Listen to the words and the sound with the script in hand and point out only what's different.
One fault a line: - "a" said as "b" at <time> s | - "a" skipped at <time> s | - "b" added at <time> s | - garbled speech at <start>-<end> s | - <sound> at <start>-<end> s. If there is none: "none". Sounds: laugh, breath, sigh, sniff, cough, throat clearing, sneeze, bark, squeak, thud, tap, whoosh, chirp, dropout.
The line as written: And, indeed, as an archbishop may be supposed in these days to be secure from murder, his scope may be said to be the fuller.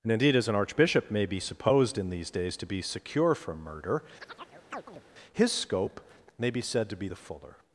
- chirp at 4.2-5.0 s